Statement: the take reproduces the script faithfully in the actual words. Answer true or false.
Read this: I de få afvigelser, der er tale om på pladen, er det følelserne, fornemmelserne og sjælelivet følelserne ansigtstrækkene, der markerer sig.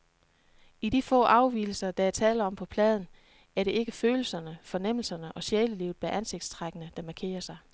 false